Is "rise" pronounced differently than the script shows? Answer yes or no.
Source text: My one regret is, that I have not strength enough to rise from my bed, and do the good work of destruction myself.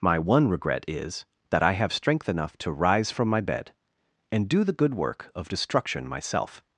no